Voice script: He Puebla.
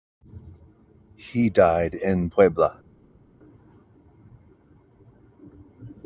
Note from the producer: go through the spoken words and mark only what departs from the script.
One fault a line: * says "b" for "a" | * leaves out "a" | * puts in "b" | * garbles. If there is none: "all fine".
* puts in "died in"